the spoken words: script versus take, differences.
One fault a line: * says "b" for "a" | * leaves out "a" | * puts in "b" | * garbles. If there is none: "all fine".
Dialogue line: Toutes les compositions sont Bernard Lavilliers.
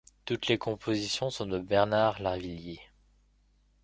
* puts in "de"